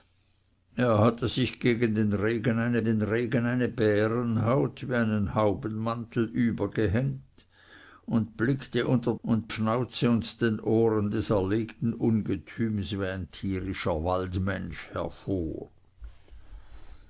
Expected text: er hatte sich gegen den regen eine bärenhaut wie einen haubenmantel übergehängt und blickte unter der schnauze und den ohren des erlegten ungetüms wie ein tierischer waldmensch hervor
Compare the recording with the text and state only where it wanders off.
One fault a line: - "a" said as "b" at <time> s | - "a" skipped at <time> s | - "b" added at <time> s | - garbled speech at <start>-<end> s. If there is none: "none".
- "den regen eine" added at 2.8 s
- "der" said as "und" at 9.2 s